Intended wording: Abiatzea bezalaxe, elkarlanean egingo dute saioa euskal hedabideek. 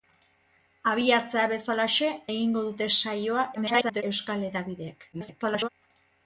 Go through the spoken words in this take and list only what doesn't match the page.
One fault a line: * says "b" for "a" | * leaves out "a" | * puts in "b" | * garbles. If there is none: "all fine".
* leaves out "elkarlanean"
* garbles
* garbles